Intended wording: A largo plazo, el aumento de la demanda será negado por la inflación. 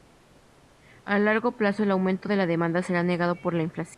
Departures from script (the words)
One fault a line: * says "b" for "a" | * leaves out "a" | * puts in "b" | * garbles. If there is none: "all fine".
all fine